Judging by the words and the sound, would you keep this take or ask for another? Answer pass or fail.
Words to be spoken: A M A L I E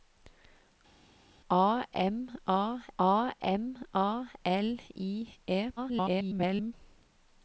fail